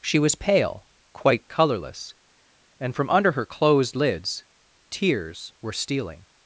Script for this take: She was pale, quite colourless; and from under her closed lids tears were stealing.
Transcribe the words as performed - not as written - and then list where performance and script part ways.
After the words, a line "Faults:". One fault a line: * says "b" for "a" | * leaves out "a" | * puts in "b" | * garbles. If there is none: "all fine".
She was pale, quite colourless; and from under her closed lids tears were stealing.
Faults:
all fine